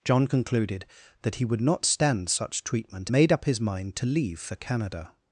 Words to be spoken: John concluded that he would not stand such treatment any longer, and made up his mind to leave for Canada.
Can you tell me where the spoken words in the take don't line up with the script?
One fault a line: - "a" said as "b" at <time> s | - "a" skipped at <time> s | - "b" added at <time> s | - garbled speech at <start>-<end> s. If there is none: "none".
- "any longer and" skipped at 3.1 s